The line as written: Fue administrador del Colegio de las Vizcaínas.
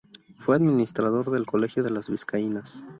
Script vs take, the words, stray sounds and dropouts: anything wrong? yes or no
no